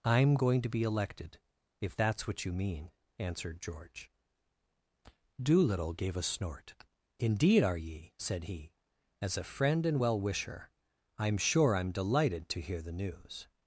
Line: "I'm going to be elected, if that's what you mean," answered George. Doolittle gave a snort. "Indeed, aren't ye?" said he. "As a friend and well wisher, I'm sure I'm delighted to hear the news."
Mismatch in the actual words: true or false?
true